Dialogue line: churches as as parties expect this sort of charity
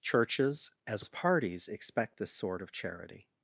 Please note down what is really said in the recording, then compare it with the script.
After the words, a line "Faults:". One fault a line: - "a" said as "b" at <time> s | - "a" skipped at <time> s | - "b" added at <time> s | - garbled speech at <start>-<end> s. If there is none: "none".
churches as as parties expect this sort of charity
Faults:
none